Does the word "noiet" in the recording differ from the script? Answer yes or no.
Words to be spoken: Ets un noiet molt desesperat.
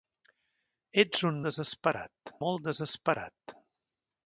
yes